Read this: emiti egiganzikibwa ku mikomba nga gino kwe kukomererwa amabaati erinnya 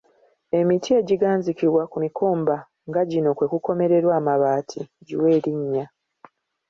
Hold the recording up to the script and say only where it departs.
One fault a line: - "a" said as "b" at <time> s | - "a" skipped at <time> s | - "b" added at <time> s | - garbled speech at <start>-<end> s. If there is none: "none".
- "giwe" added at 5.1 s